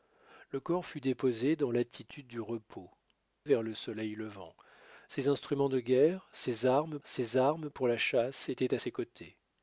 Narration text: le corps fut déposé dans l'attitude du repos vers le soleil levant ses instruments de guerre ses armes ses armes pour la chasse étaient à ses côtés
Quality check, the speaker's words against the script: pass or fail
pass